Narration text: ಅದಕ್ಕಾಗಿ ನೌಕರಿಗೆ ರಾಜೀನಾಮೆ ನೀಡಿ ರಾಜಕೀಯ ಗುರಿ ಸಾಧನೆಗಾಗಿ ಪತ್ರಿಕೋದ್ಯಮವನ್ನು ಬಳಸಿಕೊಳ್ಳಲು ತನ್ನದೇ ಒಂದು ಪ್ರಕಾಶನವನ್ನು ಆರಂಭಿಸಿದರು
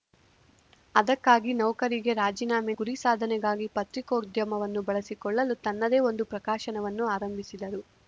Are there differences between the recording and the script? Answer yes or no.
yes